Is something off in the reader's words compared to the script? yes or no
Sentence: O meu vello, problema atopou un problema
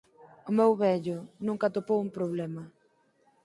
yes